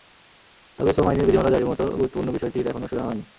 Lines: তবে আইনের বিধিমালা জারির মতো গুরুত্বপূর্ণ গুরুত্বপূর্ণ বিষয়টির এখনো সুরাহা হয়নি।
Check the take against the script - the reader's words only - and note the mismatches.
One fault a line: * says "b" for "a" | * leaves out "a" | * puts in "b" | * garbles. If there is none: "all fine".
* puts in "শ্রম"
* leaves out "গুরুত্বপূর্ণ"